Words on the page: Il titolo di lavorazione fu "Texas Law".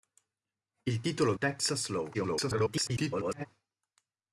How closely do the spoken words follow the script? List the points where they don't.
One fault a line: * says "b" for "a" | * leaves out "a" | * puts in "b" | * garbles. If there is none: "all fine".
* leaves out "di lavorazione fu"
* garbles